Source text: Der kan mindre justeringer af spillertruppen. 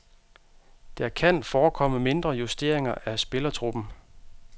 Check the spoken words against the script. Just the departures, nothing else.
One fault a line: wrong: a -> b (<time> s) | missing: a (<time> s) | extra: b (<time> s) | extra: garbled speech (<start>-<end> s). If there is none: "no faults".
extra: forekomme (1.4 s)